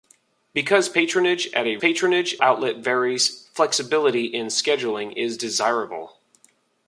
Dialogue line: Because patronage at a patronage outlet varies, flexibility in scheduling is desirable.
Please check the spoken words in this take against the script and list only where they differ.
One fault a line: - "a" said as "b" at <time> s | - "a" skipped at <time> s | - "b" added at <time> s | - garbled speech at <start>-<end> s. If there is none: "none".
none